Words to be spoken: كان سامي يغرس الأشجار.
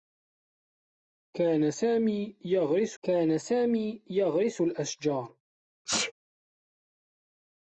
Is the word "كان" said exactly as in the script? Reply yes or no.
yes